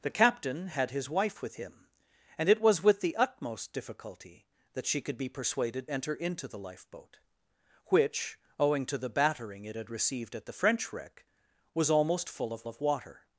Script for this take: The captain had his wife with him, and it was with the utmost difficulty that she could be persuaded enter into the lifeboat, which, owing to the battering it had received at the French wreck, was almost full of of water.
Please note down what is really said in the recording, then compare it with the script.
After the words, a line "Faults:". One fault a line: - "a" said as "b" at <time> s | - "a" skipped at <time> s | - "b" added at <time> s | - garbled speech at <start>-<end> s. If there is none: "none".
The captain had his wife with him, and it was with the utmost difficulty that she could be persuaded enter into the lifeboat, which, owing to the battering it had received at the French wreck, was almost full of of water.
Faults:
none